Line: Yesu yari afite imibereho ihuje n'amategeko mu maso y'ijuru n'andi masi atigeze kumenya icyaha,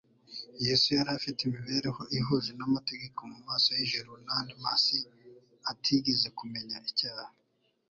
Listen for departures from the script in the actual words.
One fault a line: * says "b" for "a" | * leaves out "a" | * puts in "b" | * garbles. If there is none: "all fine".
all fine